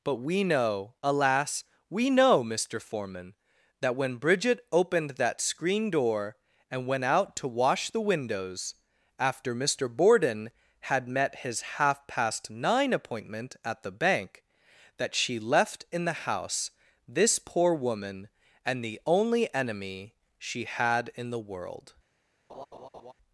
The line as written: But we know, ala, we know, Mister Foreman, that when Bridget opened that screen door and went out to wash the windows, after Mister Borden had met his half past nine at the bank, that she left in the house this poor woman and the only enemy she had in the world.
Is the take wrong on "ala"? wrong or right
wrong